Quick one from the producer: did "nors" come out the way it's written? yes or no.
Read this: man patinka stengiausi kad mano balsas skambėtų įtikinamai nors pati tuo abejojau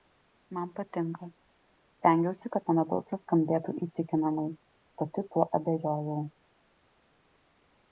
no